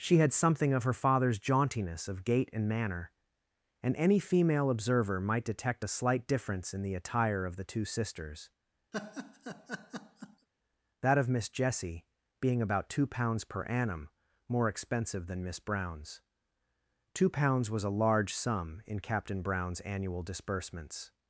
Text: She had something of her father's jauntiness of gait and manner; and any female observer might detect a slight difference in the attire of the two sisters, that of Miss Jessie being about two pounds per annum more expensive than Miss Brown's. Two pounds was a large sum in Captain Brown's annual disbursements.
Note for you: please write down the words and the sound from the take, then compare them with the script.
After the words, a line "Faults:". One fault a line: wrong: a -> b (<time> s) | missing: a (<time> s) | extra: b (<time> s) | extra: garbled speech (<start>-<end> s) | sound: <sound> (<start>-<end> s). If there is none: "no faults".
She had something of her father's jauntiness of gait and manner; and any female observer might detect a slight difference in the attire of the two sisters, that of Miss Jessie being about two pounds per annum more expensive than Miss Brown's. Two pounds was a large sum in Captain Brown's annual disbursements.
Faults:
sound: laugh (8.9-10.5 s)